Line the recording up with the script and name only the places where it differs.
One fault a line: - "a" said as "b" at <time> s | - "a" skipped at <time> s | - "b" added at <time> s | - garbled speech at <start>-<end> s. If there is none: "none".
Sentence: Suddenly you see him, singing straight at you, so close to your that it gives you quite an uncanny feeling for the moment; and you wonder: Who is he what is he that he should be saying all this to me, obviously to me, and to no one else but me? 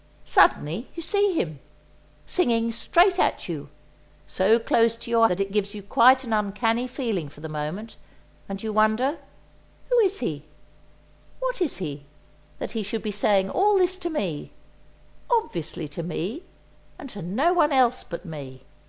none